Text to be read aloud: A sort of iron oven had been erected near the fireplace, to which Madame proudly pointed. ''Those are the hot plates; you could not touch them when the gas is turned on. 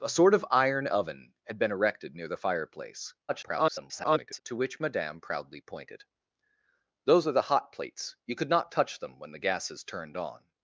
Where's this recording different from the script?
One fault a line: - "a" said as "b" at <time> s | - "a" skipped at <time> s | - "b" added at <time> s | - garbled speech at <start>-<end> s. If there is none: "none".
- garbled speech at 3.3-4.4 s